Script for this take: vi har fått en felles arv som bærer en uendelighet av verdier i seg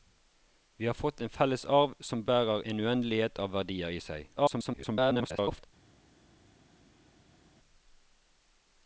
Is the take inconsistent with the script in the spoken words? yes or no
yes